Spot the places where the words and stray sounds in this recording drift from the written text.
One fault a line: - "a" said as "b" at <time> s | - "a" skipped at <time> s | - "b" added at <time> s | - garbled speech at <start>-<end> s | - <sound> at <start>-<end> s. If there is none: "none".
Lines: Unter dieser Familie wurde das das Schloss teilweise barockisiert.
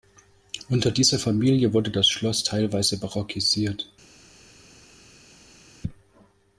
- "das" skipped at 2.1 s